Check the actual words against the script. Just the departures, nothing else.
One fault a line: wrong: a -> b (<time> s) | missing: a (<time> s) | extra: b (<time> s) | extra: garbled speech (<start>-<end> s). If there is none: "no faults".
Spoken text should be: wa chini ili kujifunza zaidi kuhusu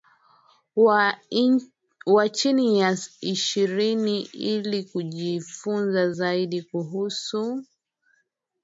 extra: ya ishirini (2.8 s)